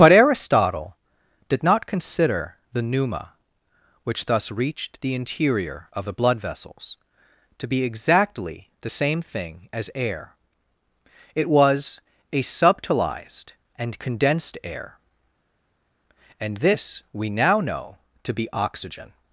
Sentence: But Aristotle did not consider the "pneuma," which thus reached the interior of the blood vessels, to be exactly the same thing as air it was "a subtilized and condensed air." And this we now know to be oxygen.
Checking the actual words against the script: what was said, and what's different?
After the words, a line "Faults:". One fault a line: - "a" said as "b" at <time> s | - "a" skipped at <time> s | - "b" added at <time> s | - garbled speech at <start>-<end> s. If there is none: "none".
But Aristotle did not consider the "pneuma," which thus reached the interior of the blood vessels, to be exactly the same thing as air it was "a subtilized and condensed air." And this we now know to be oxygen.
Faults:
none